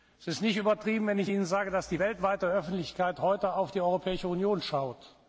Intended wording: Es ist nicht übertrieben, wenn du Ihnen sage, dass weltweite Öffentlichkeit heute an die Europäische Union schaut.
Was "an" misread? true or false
true